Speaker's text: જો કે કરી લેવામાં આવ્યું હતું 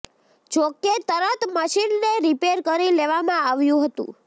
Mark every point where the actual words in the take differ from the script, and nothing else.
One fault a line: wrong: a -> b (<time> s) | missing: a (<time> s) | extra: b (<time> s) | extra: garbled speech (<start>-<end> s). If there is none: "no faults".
extra: તરત મશીનને રિપેર (1.0 s)